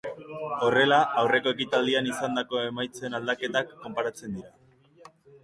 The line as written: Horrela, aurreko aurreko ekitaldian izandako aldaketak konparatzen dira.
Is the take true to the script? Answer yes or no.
no